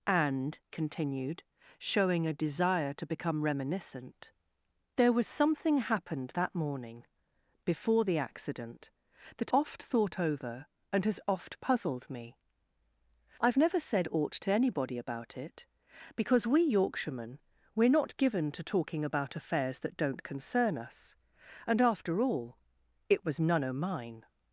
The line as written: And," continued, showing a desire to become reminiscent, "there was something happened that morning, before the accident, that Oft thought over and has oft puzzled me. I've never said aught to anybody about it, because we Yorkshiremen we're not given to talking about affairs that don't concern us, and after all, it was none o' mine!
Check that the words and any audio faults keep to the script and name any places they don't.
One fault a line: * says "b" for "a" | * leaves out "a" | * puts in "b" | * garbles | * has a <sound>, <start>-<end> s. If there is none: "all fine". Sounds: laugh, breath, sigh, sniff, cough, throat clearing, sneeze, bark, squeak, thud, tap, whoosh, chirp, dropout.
all fine